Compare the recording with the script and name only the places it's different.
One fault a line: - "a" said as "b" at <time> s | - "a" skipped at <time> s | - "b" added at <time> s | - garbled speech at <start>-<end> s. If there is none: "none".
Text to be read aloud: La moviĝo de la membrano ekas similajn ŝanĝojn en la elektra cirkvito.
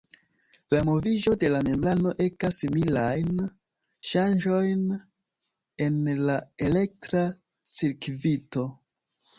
none